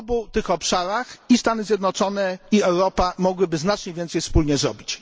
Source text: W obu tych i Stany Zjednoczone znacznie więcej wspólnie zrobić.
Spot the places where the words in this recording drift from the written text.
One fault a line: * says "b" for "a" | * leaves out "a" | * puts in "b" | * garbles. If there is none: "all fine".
* puts in "obszarach"
* puts in "i Europa mogłyby"